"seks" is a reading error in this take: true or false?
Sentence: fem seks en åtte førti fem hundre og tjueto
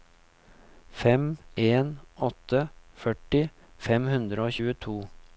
true